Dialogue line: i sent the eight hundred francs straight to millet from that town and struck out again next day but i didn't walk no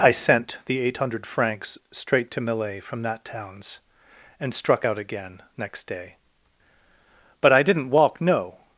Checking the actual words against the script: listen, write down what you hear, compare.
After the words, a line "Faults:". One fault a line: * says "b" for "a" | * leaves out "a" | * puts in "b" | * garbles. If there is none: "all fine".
i sent the eight hundred francs straight to millet from that towns and struck out again next day but i didn't walk no
Faults:
* says "towns" for "town"